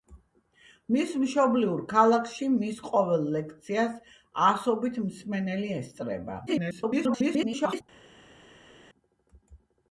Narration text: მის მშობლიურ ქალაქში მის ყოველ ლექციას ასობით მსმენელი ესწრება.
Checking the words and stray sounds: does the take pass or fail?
fail